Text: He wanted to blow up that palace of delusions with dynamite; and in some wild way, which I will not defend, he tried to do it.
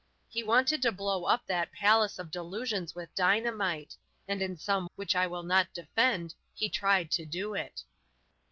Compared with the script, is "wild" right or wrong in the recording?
wrong